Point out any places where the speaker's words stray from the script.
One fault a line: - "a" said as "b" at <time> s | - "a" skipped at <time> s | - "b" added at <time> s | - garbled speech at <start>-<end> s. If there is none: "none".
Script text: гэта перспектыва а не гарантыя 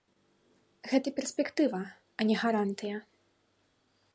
none